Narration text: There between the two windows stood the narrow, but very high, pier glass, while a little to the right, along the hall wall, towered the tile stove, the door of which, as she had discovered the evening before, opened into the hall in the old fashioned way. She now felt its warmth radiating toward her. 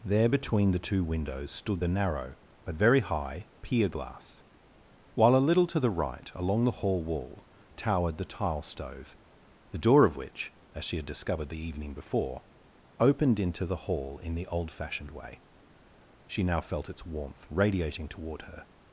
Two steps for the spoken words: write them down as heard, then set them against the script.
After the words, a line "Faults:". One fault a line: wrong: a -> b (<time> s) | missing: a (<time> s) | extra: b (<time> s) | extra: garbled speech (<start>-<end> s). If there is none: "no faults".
There between the two windows stood the narrow, but very high, pier glass, while a little to the right, along the hall wall, towered the tile stove, the door of which, as she had discovered the evening before, opened into the hall in the old fashioned way. She now felt its warmth radiating toward her.
Faults:
no faults